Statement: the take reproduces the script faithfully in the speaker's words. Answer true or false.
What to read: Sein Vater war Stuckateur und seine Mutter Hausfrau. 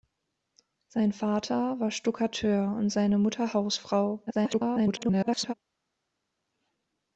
false